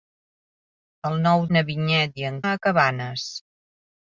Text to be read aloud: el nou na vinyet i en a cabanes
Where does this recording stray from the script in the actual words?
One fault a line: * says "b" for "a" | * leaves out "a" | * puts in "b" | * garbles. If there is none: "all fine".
all fine